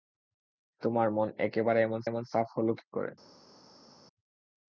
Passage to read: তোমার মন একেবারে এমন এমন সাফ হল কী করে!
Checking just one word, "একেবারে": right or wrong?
right